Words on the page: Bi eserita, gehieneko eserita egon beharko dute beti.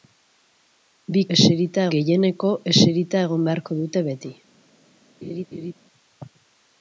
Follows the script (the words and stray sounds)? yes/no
no